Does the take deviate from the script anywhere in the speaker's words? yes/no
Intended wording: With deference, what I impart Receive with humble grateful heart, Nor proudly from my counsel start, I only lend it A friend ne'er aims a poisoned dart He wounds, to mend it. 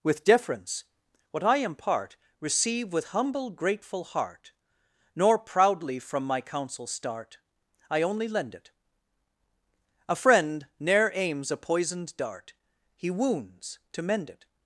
no